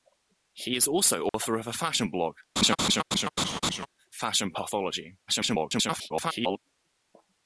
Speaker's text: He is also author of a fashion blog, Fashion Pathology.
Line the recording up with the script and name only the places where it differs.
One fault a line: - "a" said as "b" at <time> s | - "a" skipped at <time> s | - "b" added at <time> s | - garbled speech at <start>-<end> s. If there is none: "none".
- garbled speech at 5.3-6.6 s